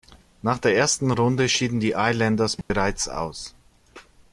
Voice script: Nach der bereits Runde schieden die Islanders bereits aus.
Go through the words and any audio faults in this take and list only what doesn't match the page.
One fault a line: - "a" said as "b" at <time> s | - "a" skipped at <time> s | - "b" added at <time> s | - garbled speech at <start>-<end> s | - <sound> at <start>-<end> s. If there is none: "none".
- "bereits" said as "ersten" at 0.8 s
- dropout at 2.6-2.7 s